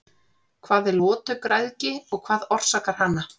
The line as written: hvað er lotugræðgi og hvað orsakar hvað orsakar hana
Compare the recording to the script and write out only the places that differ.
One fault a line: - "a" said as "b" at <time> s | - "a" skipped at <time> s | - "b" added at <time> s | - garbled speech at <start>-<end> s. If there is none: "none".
- "hvað orsakar" skipped at 3.0 s